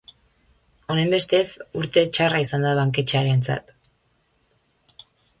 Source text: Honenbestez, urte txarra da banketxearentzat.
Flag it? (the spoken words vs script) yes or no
yes